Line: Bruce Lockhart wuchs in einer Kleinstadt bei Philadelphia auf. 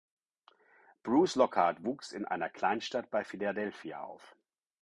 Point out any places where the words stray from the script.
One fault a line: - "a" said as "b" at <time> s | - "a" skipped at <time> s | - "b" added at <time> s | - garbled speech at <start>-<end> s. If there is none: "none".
none